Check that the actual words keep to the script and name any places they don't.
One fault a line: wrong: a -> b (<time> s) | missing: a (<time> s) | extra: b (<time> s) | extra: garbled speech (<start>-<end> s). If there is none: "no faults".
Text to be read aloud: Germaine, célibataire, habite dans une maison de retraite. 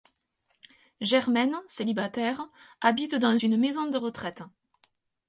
no faults